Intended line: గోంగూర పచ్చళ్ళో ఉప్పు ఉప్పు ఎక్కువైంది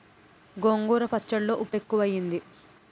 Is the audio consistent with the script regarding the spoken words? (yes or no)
no